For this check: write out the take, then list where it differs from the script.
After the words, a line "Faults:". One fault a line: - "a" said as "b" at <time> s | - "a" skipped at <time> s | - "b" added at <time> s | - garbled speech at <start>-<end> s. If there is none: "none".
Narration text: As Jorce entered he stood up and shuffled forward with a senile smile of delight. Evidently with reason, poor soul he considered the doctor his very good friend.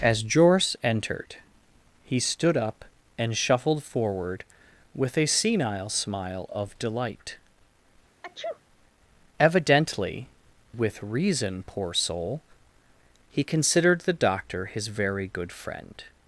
As Jorce entered he stood up and shuffled forward with a senile smile of delight. Evidently with reason, poor soul he considered the doctor his very good friend.
Faults:
none